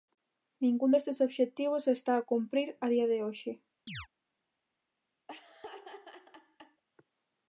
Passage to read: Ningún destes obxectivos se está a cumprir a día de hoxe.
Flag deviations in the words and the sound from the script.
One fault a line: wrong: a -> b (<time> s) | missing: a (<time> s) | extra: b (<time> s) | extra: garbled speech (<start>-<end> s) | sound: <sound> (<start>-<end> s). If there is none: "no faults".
sound: chirp (3.9-4.1 s)
sound: laugh (5.3-6.8 s)